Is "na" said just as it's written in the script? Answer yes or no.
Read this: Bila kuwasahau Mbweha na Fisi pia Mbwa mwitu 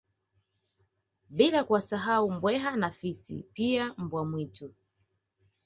yes